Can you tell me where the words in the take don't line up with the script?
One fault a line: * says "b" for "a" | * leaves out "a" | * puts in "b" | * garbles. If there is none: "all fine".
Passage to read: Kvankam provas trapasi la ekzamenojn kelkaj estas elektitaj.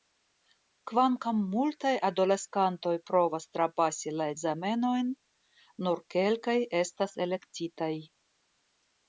* puts in "multaj adoleskantoj"
* puts in "nur"